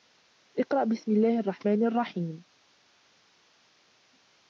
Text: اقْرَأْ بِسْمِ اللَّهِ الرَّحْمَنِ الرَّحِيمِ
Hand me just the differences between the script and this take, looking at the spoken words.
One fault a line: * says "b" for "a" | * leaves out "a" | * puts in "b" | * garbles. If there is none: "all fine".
all fine